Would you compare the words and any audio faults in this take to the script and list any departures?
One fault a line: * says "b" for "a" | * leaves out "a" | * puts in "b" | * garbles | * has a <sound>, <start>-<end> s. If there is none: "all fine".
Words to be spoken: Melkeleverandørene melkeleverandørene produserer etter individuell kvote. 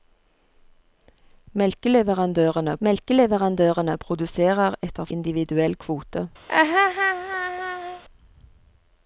* has a laugh, 6.5-8.0 s